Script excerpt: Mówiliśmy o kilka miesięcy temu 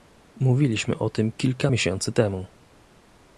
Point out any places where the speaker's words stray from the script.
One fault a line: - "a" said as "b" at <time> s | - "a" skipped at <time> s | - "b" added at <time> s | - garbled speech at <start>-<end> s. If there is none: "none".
- "tym" added at 1.1 s